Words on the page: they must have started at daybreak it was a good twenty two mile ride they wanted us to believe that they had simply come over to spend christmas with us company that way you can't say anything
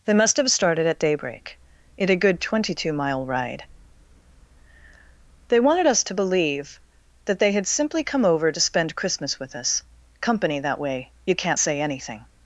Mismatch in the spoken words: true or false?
true